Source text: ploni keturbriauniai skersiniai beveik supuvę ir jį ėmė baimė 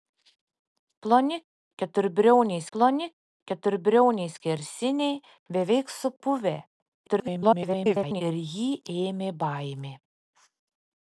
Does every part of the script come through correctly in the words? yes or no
no